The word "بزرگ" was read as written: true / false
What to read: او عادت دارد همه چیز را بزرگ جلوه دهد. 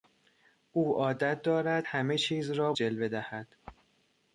false